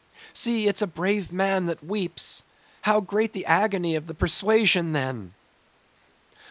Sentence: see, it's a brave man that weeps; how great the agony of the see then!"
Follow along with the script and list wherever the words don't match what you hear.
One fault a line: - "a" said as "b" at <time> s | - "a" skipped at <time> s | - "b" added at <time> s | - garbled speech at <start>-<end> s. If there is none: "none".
- "see" said as "persuasion" at 4.1 s